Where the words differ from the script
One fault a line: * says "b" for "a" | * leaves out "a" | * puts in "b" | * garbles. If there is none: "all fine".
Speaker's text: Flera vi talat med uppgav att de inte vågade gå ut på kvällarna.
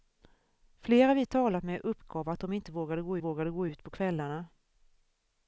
* puts in "vågade gå"